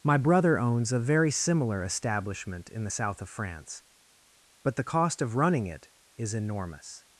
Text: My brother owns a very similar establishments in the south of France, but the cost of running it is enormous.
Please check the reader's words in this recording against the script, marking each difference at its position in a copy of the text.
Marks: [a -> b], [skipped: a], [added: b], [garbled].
My brother owns a very similar [establishments -> establishment] in the south of France, but the cost of running it is enormous.